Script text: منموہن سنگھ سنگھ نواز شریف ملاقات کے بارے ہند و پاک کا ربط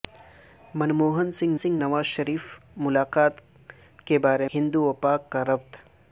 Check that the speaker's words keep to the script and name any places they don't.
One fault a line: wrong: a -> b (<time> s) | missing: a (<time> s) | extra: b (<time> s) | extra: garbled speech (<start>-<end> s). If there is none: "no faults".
no faults